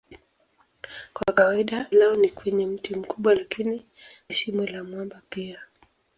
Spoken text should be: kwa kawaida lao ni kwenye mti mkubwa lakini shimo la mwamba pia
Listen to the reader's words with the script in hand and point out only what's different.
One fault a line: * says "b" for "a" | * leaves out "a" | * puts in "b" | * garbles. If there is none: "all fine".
all fine